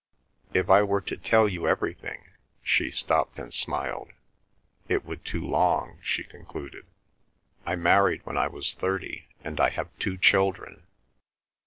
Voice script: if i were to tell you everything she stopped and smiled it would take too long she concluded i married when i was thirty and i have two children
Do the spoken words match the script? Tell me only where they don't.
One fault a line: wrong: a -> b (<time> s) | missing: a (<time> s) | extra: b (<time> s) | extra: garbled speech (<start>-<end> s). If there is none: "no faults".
missing: take (5.3 s)